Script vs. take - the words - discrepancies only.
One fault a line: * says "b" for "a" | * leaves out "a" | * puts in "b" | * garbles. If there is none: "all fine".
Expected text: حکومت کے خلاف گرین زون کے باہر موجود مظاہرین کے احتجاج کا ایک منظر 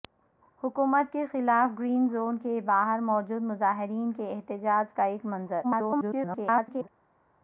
* garbles